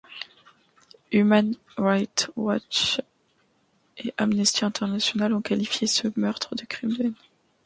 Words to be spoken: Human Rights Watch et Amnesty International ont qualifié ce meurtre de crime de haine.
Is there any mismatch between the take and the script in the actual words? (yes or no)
no